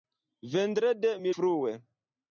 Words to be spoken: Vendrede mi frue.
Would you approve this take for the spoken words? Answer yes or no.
yes